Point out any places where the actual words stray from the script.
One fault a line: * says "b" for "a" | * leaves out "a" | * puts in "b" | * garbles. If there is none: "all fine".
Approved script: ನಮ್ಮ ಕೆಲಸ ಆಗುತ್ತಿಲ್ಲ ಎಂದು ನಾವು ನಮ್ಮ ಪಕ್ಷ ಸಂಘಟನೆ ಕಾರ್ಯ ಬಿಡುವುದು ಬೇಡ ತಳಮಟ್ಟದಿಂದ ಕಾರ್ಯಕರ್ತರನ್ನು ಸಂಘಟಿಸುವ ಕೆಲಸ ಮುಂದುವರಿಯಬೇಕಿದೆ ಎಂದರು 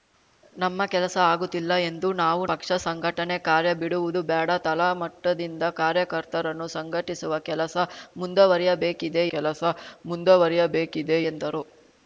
* leaves out "ನಮ್ಮ"
* puts in "ಕೆಲಸ ಮುಂದುವರಿಯಬೇಕಿದೆ"